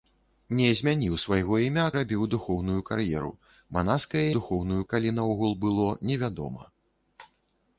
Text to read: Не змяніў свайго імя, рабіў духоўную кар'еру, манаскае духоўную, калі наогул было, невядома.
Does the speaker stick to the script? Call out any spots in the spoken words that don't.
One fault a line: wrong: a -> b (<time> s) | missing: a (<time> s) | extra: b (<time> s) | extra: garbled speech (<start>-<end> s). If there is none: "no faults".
no faults